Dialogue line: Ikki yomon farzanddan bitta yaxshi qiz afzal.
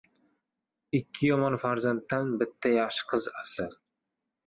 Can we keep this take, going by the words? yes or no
yes